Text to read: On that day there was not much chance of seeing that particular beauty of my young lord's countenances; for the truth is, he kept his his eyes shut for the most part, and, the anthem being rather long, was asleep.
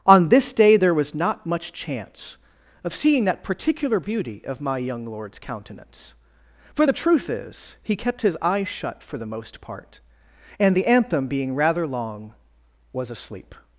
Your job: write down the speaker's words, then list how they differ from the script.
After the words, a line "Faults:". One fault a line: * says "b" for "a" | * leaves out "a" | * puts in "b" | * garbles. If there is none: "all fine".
On this day there was not much chance of seeing that particular beauty of my young lord's countenance; for the truth is, he kept his eyes shut for the most part, and, the anthem being rather long, was asleep.
Faults:
* says "this" for "that"
* says "countenance" for "countenances"
* leaves out "his"